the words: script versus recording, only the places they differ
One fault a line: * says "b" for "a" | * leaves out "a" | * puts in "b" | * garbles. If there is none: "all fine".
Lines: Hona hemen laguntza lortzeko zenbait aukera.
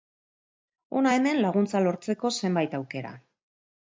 all fine